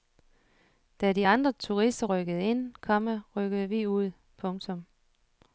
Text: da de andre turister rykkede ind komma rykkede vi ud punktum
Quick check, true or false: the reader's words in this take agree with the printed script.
true